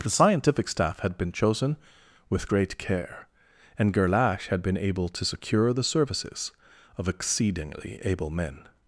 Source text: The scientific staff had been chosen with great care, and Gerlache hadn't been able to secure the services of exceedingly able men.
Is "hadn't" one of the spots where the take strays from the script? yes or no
yes